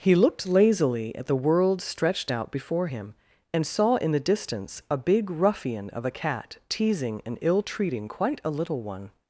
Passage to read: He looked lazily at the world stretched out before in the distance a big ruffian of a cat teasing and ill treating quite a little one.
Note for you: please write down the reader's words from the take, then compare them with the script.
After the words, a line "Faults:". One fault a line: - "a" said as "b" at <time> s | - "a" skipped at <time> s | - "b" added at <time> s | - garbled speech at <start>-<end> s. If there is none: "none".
He looked lazily at the world stretched out before him, and saw in the distance a big ruffian of a cat teasing and ill treating quite a little one.
Faults:
- "him and saw" added at 2.8 s